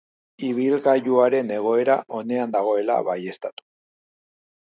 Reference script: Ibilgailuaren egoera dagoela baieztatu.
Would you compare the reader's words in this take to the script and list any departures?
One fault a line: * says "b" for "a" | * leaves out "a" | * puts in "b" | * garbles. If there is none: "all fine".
* puts in "onean"